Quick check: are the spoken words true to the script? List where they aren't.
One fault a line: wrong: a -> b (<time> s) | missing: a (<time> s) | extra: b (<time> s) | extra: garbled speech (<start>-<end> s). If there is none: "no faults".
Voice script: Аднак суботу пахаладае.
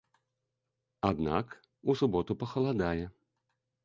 extra: у (1.8 s)